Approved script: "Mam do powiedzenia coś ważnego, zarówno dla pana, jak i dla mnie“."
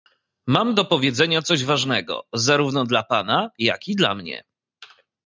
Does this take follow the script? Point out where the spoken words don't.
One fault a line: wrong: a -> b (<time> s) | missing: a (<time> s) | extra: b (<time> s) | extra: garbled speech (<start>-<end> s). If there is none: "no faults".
no faults